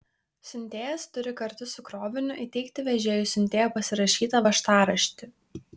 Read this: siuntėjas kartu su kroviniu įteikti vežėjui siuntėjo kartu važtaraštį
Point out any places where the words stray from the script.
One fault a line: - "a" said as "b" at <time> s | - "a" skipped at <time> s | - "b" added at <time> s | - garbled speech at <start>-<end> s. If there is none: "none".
- "turi" added at 1.2 s
- "kartu" said as "pasirašytą" at 3.8 s